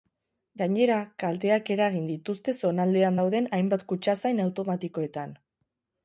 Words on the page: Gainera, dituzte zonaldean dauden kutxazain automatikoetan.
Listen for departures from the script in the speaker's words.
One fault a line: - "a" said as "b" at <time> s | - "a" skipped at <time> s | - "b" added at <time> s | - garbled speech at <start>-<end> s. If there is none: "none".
- "kalteak eragin" added at 1.2 s
- "hainbat" added at 3.6 s